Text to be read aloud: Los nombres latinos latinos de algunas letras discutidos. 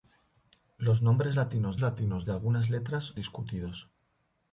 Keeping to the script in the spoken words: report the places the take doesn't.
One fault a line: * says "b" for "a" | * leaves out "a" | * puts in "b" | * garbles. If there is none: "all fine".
all fine